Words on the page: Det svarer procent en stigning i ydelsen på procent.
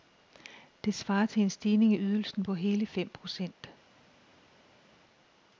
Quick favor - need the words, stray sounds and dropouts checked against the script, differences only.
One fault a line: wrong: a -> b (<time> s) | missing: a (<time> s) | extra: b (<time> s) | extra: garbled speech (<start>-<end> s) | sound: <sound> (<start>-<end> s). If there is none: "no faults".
wrong: procent -> til (1.2 s)
extra: hele fem (2.5 s)